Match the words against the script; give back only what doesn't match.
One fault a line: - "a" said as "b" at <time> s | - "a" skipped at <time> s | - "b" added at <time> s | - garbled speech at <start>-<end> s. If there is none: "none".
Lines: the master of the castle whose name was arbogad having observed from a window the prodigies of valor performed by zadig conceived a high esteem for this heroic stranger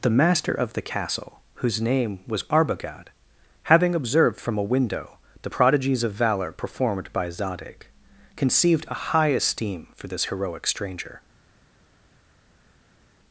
none